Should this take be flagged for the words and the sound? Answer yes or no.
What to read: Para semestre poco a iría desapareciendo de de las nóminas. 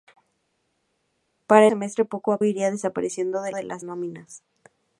no